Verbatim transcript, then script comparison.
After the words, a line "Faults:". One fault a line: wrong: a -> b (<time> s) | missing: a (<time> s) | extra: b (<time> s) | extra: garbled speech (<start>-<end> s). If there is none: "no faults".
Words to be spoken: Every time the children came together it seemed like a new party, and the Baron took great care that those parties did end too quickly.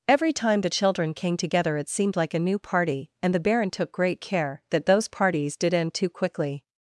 Every time the children came together it seemed like a new party, and the Baron took great care that those parties did end too quickly.
Faults:
no faults